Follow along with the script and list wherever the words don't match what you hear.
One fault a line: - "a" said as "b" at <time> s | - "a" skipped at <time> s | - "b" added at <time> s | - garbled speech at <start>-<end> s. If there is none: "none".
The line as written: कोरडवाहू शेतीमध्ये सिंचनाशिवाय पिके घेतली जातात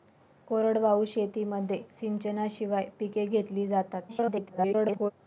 - garbled speech at 4.1-5.1 s